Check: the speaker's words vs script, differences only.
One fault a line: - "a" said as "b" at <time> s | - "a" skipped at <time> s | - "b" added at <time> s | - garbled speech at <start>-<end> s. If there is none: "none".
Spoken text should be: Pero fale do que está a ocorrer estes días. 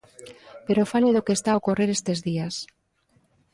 none